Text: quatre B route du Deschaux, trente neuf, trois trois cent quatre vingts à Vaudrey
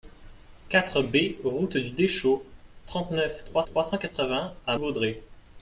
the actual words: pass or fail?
pass